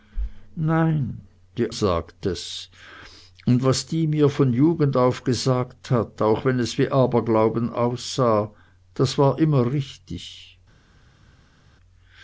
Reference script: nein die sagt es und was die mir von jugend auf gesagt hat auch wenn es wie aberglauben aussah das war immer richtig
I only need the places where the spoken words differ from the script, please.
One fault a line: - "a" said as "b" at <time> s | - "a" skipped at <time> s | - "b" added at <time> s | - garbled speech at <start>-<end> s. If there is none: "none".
none